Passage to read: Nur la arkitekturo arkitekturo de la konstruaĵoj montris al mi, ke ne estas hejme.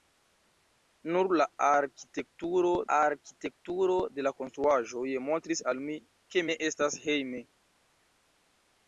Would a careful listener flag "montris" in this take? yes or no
no